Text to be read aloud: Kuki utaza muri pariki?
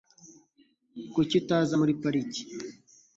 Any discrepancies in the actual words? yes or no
no